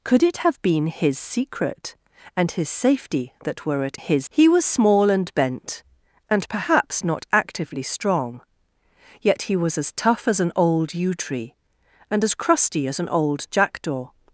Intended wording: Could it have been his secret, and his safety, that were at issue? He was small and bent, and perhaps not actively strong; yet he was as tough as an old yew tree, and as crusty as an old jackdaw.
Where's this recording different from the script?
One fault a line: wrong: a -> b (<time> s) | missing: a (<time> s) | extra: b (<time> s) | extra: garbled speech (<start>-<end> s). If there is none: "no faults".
wrong: issue -> his (3.9 s)